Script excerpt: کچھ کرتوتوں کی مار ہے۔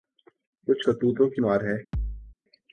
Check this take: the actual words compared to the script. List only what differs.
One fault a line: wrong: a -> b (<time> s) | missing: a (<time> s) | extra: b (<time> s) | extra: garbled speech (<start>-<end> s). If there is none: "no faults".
no faults